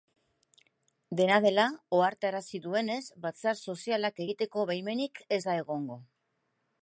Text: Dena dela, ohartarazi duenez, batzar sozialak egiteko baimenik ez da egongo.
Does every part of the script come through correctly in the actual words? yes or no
yes